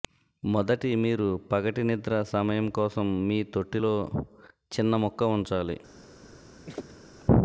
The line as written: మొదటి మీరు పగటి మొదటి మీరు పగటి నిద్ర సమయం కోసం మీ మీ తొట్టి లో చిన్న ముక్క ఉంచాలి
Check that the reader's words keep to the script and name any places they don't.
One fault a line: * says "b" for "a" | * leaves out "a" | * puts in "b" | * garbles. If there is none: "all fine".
* leaves out "మొదటి మీరు పగటి"
* leaves out "మీ"